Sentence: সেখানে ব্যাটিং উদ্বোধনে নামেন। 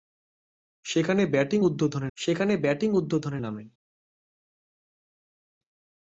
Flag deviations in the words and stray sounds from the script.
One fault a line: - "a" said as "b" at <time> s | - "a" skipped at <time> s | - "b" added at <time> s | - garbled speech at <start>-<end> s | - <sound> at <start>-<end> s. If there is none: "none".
- "সেখানে ব্যাটিং উদ্বোধনে" added at 2.2 s